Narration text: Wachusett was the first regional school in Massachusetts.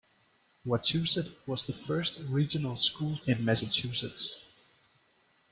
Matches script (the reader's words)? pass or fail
pass